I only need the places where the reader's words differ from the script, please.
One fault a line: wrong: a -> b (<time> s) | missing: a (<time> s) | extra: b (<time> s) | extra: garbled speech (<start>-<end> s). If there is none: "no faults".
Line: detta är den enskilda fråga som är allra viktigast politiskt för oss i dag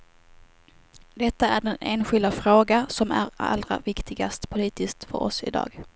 no faults